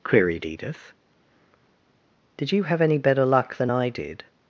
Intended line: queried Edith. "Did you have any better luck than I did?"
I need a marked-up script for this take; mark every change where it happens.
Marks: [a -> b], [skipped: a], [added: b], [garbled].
queried Edith. "Did you have any better luck than I did?"